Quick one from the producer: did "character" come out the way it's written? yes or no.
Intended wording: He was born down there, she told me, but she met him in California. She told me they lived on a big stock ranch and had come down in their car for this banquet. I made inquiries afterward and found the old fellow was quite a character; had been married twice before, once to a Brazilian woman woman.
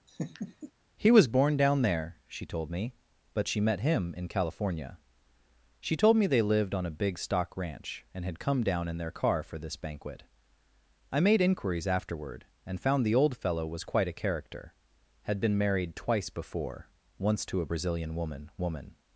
yes